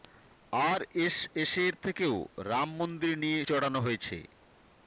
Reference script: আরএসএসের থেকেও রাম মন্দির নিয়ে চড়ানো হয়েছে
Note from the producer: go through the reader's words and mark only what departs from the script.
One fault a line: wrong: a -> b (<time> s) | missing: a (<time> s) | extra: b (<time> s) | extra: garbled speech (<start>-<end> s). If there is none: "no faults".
no faults